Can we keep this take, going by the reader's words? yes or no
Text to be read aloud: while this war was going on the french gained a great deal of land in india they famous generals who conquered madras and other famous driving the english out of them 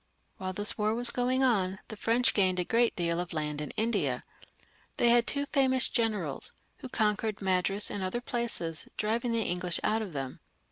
no